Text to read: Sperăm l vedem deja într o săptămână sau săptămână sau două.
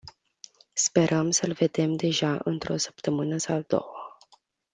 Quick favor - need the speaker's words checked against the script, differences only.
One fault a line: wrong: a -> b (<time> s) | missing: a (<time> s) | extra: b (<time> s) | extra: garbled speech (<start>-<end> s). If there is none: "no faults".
extra: să (1.3 s)
missing: săptămână sau (3.6 s)